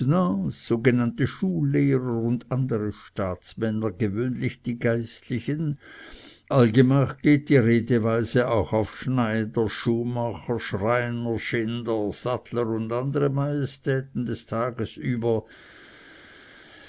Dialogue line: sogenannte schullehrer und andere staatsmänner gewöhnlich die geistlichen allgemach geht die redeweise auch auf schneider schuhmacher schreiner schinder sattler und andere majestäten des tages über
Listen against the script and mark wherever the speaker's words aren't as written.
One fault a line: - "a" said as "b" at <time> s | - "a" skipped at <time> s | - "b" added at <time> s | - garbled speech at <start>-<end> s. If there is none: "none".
none